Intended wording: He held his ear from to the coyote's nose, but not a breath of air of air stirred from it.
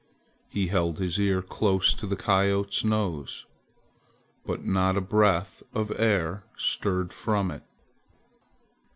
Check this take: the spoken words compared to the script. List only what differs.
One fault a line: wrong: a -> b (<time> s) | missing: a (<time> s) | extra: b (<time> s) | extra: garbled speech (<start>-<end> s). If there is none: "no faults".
wrong: from -> close (1.4 s)
missing: of air (6.4 s)